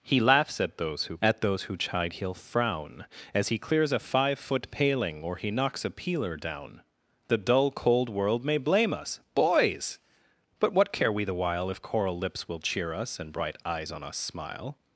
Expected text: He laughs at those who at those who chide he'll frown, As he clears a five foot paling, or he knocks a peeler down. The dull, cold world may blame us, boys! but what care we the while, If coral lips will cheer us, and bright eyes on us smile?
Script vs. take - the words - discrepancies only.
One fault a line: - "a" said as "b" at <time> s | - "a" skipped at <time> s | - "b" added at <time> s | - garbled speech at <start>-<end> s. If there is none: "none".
none